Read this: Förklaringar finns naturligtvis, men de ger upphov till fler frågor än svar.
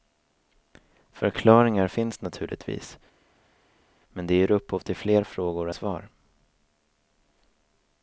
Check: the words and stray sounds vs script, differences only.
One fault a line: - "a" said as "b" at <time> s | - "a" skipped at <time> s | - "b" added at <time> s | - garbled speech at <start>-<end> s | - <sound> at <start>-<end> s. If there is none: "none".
- "än" skipped at 5.7 s